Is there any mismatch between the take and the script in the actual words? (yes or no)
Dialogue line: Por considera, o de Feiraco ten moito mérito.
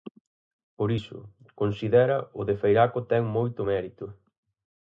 yes